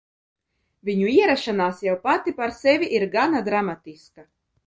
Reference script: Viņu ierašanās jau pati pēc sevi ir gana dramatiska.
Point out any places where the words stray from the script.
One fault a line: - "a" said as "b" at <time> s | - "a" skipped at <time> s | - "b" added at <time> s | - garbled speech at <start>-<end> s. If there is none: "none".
- "pēc" said as "par" at 2.4 s